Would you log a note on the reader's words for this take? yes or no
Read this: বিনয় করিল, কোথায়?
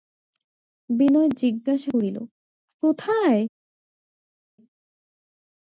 yes